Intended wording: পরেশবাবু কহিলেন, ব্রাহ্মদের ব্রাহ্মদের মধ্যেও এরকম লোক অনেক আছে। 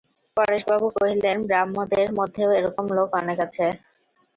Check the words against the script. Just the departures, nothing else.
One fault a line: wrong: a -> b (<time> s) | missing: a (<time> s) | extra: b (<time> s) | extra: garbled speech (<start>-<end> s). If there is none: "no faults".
missing: ব্রাহ্মদের (2.1 s)